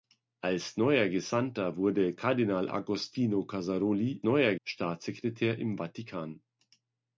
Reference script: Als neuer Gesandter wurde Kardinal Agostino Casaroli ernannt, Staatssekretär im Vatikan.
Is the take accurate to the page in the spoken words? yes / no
no